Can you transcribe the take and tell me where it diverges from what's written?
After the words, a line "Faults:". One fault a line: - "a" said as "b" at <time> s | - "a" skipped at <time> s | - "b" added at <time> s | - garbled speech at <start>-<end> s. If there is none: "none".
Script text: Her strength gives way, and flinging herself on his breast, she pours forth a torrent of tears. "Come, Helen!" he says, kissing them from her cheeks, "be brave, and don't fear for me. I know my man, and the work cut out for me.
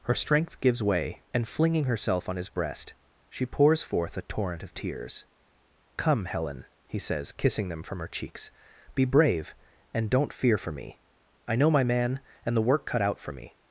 Her strength gives way, and flinging herself on his breast, she pours forth a torrent of tears. "Come, Helen!" he says, kissing them from her cheeks, "be brave, and don't fear for me. I know my man, and the work cut out for me.
Faults:
none